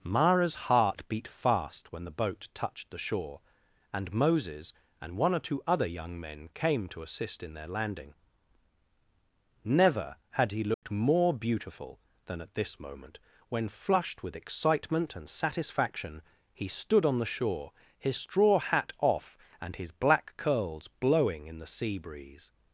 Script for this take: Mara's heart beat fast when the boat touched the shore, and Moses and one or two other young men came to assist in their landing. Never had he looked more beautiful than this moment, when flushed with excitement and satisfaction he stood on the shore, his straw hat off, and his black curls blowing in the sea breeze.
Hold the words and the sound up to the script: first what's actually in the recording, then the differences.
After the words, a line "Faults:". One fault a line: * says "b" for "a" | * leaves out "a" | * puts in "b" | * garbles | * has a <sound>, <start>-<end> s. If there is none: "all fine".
Mara's heart beat fast when the boat touched the shore, and Moses and one or two other young men came to assist in their landing. Never had he looked more beautiful than at this moment, when flushed with excitement and satisfaction he stood on the shore, his straw hat off, and his black curls blowing in the sea breeze.
Faults:
* has a dropout, 10.7-10.8 s
* puts in "at"